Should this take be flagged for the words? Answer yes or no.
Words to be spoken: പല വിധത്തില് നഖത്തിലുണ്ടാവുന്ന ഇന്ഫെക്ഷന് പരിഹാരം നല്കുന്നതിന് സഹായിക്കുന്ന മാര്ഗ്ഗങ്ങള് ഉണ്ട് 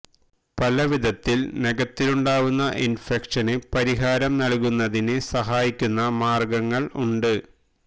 no